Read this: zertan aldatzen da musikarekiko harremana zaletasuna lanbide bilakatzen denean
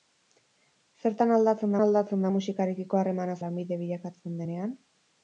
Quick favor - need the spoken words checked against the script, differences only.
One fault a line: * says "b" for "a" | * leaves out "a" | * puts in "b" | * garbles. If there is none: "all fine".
* puts in "aldatzen"
* leaves out "zaletasuna"